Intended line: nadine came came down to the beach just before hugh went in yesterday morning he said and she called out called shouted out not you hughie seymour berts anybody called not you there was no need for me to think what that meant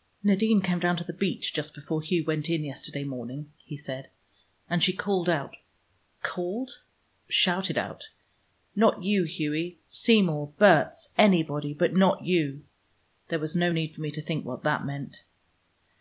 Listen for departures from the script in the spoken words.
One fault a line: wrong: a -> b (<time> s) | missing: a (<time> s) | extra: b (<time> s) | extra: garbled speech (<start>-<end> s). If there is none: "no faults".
missing: came (0.8 s)
wrong: called -> but (11.8 s)